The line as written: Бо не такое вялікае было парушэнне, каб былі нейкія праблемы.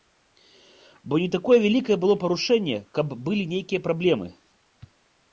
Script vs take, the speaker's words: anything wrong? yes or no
no